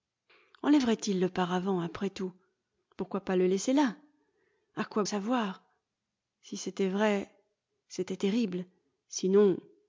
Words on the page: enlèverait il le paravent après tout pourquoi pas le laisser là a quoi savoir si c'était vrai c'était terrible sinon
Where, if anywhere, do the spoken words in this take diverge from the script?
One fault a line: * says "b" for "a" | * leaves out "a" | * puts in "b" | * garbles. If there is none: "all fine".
all fine